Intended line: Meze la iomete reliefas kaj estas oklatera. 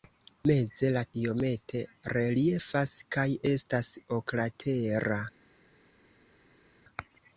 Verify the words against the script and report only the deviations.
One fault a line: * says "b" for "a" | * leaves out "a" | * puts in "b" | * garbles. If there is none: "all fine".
all fine